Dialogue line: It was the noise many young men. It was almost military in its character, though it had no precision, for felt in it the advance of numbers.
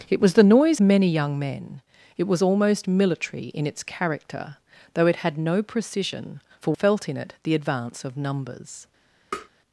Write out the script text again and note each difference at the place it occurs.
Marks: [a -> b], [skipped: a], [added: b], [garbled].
It was the noise many young men. It was almost military in its character, though it had no precision, for felt in it the advance of numbers.